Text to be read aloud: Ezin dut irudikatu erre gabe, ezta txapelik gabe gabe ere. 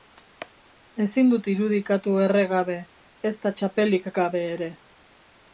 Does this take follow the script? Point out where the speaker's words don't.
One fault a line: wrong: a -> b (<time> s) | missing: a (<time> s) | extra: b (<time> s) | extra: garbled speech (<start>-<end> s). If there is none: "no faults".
missing: gabe (4.5 s)